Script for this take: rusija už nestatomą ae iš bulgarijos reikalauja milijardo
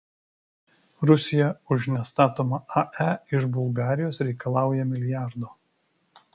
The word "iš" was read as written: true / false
true